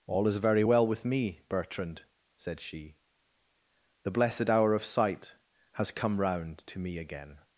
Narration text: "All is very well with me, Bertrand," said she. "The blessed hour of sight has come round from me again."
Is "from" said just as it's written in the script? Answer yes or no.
no